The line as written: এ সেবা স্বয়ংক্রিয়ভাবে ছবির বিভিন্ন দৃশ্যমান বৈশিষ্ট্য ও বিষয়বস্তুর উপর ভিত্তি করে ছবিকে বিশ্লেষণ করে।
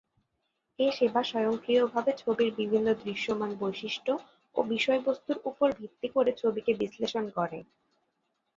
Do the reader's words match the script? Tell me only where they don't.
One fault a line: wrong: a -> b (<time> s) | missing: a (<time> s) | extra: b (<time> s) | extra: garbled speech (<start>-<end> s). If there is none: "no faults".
no faults